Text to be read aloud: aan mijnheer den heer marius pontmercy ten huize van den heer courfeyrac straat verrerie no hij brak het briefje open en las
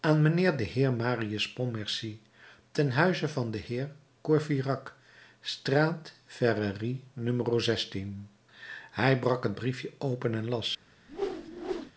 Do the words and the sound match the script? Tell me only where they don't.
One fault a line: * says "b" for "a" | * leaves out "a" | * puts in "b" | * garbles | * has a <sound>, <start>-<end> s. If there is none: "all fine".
* has a whoosh, 11.1-11.9 s